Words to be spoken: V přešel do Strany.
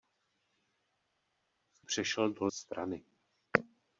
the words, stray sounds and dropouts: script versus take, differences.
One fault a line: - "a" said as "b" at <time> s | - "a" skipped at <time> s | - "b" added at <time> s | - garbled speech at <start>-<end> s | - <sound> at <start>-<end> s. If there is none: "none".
none